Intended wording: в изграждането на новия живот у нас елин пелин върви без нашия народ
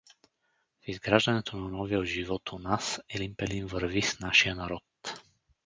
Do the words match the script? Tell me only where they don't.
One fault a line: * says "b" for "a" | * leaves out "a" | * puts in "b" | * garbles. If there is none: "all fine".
* says "с" for "без"